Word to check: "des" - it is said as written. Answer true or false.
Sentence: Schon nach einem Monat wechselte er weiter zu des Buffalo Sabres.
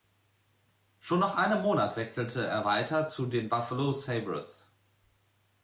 false